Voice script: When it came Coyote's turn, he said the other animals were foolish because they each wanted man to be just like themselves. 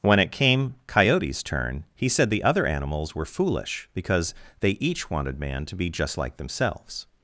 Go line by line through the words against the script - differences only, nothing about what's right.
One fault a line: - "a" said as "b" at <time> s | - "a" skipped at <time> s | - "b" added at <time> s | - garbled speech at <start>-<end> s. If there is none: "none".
none